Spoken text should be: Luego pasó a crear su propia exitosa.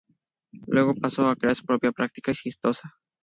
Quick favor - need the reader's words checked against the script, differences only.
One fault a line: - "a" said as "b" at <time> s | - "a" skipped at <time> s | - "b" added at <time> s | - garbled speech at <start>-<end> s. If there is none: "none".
- "práctica" added at 1.9 s